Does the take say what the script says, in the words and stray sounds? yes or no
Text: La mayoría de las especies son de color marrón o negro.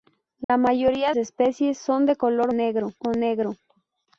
no